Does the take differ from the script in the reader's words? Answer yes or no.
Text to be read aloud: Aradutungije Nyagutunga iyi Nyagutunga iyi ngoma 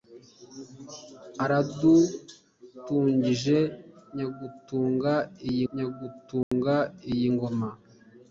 no